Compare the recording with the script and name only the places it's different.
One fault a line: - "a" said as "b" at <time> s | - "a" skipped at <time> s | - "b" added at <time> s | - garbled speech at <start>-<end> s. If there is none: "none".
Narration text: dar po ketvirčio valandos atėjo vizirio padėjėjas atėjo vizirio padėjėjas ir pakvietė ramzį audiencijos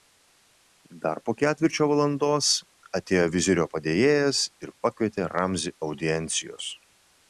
- "atėjo vizirio padėjėjas" skipped at 4.4 s